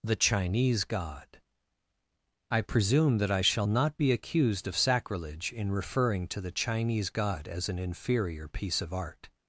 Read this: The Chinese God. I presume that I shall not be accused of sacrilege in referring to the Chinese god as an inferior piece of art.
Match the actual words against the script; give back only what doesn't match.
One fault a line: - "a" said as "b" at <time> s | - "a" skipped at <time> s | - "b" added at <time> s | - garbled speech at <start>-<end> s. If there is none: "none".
none